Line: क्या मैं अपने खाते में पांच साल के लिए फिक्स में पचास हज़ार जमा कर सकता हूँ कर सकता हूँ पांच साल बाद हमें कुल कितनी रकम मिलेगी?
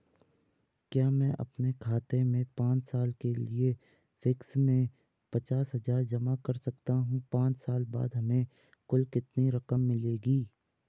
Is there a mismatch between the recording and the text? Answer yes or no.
yes